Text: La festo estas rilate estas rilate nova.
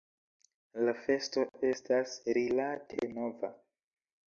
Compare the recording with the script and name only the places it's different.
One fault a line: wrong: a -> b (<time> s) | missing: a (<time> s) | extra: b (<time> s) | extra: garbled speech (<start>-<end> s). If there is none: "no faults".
missing: estas rilate (3.1 s)